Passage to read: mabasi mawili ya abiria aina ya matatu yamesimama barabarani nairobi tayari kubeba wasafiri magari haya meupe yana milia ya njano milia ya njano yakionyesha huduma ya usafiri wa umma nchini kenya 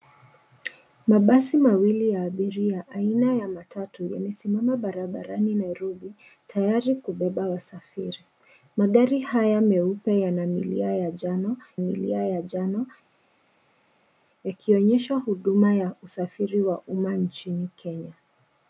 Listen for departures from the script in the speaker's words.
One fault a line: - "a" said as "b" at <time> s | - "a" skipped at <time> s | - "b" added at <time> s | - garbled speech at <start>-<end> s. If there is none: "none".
none